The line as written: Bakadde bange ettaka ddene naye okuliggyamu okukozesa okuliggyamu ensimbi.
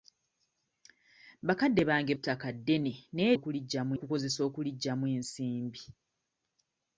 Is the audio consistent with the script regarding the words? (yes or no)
yes